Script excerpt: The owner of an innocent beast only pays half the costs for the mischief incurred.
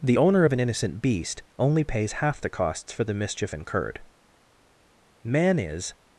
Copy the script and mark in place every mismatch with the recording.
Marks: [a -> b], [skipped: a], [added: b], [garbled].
The owner of an innocent beast only pays half the costs for the mischief incurred. [added: Man is]